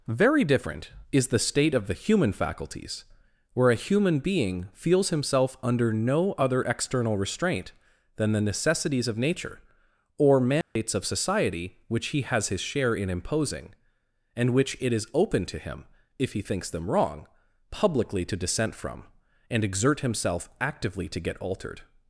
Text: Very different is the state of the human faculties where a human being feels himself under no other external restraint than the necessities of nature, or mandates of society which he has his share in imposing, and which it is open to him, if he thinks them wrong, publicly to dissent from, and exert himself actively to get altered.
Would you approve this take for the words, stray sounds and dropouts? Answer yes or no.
no